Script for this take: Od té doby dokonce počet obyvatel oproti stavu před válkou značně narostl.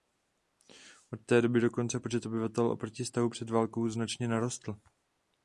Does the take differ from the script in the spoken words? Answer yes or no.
no